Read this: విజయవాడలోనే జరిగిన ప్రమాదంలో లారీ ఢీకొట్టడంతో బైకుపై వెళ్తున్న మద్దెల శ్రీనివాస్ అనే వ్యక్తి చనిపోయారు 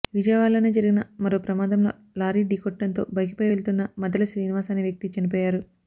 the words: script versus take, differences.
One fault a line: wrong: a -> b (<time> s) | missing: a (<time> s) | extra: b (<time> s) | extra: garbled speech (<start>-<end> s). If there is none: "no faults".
extra: మరో (1.2 s)